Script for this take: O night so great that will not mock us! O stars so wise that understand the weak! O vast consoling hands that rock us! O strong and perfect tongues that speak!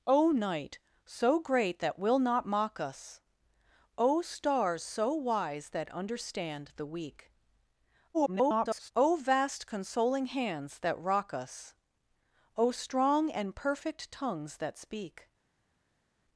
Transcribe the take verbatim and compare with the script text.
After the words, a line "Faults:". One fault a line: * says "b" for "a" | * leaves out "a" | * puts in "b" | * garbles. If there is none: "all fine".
O night so great that will not mock us! O stars so wise that understand the weak! [garbled] O vast consoling hands that rock us! O strong and perfect tongues that speak!
Faults:
* garbles